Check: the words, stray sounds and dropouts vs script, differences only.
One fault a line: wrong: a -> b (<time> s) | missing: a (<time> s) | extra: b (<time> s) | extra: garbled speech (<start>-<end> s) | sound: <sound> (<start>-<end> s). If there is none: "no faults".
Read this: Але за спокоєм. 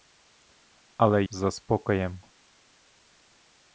no faults